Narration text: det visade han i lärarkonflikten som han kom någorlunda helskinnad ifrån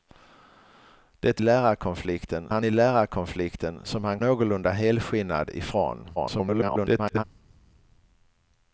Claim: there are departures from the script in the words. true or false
true